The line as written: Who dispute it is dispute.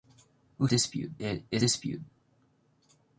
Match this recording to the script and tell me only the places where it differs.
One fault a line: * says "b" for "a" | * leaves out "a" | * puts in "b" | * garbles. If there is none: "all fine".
all fine